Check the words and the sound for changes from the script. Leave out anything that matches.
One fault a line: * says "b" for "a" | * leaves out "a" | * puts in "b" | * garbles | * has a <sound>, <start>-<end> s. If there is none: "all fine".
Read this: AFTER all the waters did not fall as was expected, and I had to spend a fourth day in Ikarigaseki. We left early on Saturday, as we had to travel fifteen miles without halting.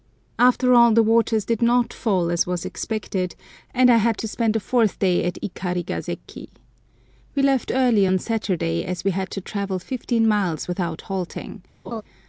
* says "at" for "in"
* has a laugh, 11.8-12.0 s